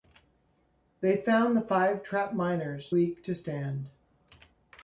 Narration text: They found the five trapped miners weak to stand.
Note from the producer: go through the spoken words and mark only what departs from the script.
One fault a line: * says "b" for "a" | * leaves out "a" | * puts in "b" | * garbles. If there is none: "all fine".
all fine